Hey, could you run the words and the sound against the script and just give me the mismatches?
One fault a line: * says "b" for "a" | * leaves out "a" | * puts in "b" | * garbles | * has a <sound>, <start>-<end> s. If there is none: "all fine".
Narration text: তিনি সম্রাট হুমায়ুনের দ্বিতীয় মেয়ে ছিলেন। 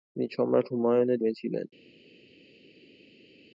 * leaves out "দ্বিতীয়"